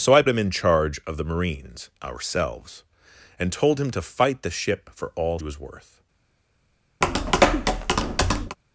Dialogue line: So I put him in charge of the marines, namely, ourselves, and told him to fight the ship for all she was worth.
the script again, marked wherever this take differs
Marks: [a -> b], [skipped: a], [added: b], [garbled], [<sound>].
So I [skipped: put] him in charge of the marines, [skipped: namely,] ourselves, and told him to fight the ship for all [skipped: she] was worth. [tap]